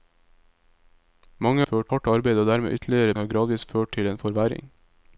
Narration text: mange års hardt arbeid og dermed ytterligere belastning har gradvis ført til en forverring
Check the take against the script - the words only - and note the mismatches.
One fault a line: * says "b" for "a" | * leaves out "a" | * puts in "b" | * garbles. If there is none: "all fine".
* says "ført" for "års"
* leaves out "belastning"